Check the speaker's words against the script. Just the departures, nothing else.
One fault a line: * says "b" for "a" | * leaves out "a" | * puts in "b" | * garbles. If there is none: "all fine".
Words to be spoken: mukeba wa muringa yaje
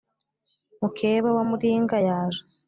all fine